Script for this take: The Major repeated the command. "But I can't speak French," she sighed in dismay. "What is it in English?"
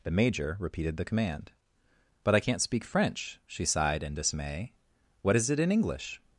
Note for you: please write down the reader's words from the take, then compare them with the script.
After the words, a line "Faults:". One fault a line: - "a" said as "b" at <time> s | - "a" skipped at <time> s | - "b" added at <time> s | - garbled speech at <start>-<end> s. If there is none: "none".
The Major repeated the command. "But I can't speak French," she sighed in dismay. "What is it in English?"
Faults:
none